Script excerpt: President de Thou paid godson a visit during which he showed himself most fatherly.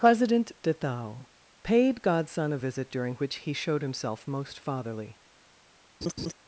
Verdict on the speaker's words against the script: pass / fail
pass